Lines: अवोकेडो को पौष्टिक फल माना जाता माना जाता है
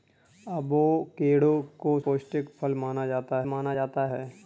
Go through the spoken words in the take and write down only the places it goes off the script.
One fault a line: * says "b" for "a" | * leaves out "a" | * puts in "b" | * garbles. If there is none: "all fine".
all fine